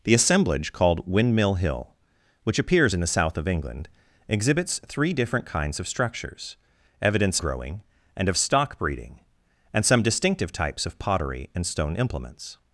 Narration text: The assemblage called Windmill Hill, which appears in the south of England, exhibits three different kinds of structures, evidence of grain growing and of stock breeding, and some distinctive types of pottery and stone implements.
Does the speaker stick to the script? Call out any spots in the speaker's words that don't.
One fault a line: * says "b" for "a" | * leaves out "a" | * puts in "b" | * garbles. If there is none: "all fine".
* leaves out "of grain"